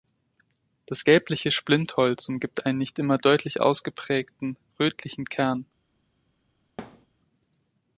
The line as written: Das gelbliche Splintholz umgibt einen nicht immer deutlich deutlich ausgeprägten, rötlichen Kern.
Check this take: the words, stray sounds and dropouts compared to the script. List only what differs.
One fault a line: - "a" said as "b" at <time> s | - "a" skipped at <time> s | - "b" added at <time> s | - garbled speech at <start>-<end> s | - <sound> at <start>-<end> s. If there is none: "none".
- "deutlich" skipped at 3.6 s
- thud at 6.8-7.1 s